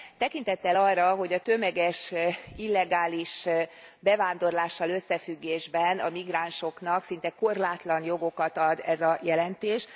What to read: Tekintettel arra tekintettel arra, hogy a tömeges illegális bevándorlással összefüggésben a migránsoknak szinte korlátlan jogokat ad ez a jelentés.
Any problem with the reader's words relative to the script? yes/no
yes